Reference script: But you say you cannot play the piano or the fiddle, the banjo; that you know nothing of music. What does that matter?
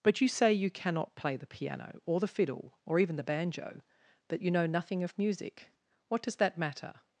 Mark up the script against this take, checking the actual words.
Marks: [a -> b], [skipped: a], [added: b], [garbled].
But you say you cannot play the piano or the fiddle, [added: or even] the banjo; that you know nothing of music. What does that matter?